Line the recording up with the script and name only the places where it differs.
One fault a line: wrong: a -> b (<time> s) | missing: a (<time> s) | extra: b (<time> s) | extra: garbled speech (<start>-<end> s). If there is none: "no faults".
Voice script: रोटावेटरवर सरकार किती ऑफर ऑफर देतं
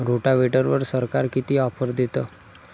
missing: ऑफर (1.9 s)